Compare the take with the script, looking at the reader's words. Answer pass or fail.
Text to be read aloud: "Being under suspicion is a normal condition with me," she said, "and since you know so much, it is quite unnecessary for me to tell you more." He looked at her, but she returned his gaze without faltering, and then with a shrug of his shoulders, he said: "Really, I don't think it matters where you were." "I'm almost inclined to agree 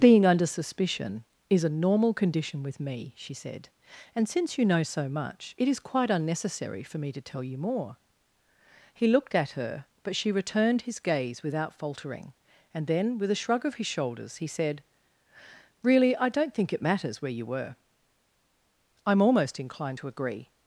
pass